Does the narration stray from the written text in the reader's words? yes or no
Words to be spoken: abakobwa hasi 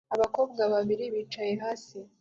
yes